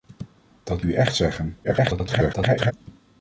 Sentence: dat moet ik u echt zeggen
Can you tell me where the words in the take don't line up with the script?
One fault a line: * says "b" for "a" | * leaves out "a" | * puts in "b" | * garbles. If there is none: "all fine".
* leaves out "moet ik"
* garbles